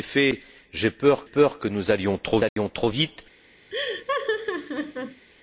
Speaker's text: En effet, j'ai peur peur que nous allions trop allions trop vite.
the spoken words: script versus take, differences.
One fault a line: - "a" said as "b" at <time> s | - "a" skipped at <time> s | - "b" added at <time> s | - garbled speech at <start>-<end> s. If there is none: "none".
none